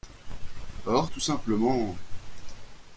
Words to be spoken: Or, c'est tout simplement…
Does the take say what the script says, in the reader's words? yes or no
no